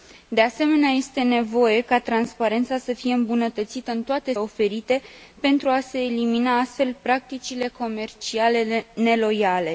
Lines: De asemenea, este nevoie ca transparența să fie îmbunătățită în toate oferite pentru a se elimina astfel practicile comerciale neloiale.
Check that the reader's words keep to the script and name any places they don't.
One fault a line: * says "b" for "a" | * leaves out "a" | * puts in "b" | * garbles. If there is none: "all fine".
all fine